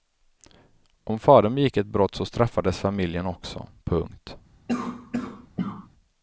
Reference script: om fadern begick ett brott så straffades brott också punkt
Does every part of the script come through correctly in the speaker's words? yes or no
no